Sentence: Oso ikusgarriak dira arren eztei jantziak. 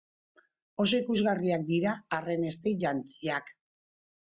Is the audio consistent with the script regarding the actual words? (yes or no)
yes